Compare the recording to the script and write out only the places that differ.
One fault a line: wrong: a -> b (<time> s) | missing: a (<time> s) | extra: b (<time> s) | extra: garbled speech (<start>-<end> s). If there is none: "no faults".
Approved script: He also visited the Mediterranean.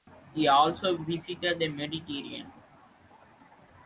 no faults